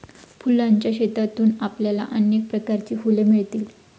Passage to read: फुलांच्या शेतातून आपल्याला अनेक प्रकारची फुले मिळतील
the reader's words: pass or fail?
pass